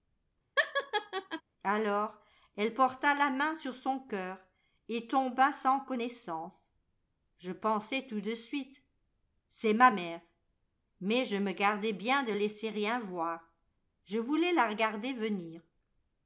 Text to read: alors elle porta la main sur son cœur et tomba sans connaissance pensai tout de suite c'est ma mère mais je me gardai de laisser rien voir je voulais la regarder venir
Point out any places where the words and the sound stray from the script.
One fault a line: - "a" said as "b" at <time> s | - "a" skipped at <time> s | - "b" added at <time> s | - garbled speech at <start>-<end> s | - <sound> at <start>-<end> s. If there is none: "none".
- laugh at 0.6-1.4 s
- "je" added at 7.4 s
- "bien" added at 11.9 s